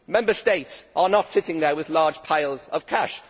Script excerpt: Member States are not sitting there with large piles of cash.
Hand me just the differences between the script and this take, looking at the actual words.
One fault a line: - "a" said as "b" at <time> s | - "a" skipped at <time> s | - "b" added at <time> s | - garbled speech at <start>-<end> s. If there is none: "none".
none